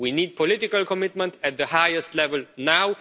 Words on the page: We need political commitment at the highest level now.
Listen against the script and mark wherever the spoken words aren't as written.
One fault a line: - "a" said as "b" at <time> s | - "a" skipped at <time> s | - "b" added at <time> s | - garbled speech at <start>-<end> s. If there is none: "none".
none